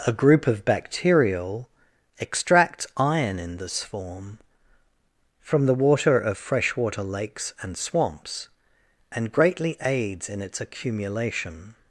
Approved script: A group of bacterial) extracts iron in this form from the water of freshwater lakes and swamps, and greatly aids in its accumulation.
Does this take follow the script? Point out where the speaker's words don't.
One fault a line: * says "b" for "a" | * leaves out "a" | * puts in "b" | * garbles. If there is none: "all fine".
* says "extract" for "extracts"